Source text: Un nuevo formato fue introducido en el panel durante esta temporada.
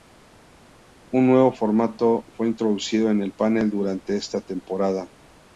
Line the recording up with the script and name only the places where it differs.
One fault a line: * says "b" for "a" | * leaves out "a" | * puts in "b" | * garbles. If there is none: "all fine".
all fine